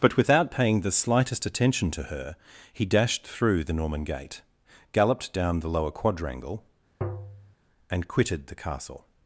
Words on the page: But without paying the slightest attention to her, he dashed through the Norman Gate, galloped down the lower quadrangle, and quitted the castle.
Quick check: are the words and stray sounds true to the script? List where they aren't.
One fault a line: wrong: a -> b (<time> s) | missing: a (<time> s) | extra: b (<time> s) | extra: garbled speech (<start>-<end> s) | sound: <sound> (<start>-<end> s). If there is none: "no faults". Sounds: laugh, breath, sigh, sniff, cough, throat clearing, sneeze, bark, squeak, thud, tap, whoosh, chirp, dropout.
sound: tap (7.0-7.5 s)